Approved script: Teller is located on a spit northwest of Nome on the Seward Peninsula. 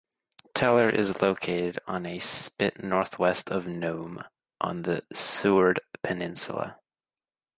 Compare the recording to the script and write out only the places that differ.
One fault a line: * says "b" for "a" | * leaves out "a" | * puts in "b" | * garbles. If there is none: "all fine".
all fine